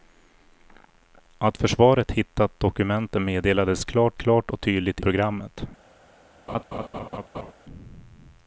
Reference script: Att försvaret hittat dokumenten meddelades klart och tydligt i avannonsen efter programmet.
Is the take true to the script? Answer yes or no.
no